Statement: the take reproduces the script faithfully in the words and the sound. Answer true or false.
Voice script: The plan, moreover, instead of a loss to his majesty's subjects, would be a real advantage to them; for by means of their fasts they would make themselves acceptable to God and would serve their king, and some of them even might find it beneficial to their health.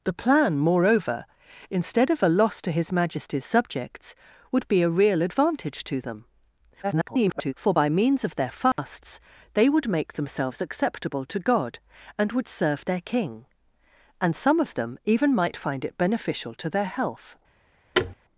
false